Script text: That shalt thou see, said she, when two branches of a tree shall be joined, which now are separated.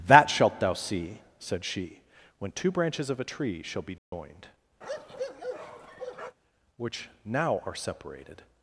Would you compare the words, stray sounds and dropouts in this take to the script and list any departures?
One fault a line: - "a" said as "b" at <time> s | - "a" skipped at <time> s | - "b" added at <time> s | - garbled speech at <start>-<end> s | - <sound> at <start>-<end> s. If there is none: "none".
- dropout at 4.0-4.1 s
- bark at 4.8-6.4 s